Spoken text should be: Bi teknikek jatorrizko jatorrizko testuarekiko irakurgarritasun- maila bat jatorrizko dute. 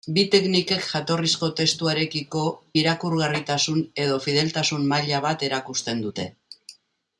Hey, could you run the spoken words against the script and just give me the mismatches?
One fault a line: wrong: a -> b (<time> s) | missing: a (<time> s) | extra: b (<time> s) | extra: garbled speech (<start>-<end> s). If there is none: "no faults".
missing: jatorrizko (1.5 s)
extra: edo fideltasun (4.1 s)
wrong: jatorrizko -> erakusten (5.5 s)